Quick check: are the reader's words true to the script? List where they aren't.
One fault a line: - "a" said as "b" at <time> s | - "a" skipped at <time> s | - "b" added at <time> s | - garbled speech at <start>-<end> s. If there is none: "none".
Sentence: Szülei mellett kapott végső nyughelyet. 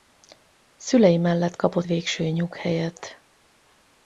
none